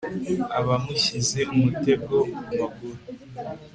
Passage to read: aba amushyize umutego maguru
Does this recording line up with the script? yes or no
yes